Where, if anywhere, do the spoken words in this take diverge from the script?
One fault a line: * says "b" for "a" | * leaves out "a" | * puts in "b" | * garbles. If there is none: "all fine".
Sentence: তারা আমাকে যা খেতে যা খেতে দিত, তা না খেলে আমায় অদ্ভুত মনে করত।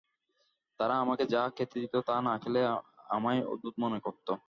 * leaves out "যা খেতে"